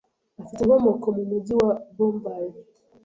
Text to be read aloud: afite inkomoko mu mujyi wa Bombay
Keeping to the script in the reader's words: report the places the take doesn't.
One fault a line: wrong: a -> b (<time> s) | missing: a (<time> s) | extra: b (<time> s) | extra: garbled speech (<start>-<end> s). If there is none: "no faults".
no faults